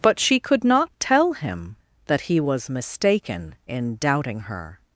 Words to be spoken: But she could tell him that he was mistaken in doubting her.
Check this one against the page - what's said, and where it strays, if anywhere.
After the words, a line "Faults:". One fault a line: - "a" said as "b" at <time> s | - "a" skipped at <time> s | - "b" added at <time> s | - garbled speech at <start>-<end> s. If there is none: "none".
But she could not tell him that he was mistaken in doubting her.
Faults:
- "not" added at 0.6 s